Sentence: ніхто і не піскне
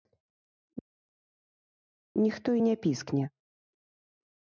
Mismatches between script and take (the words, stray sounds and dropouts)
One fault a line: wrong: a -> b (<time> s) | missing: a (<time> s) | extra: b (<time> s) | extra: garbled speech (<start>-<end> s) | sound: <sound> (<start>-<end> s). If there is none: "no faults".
no faults